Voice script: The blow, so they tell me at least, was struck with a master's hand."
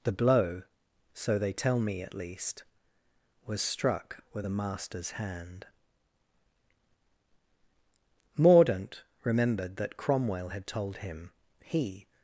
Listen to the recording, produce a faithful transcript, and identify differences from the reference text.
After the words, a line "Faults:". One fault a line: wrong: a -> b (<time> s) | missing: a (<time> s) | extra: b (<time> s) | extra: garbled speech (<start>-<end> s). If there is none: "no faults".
The blow, so they tell me at least, was struck with a master's hand." Mordaunt remembered that Cromwell had told him he
Faults:
extra: Mordaunt remembered that Cromwell had told him he (8.4 s)